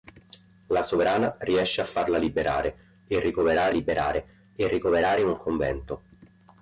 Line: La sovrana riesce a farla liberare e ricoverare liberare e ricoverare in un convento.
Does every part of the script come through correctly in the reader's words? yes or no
yes